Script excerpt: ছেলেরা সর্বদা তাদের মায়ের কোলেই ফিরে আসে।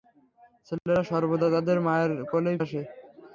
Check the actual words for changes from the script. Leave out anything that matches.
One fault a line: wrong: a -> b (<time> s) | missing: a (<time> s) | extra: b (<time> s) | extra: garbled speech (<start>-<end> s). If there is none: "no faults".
missing: ফিরে (2.6 s)